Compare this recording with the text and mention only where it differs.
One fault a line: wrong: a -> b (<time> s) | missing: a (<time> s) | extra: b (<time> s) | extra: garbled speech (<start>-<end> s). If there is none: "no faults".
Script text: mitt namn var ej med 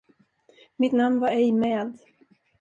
no faults